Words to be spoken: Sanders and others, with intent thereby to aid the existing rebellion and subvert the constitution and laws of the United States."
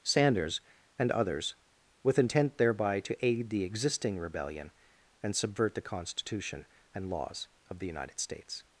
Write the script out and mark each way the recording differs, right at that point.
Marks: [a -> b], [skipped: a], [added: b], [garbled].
Sanders and others, with intent thereby to aid the existing rebellion and subvert the constitution and laws of the United States."